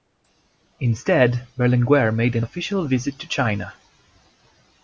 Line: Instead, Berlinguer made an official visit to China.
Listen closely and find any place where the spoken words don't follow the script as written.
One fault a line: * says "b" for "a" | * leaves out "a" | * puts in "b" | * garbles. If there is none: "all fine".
all fine